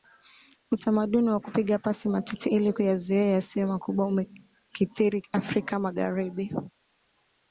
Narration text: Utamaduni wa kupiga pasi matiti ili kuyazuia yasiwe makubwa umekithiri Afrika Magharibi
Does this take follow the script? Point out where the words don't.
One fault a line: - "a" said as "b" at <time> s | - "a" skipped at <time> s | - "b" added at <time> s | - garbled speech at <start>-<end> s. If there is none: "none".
none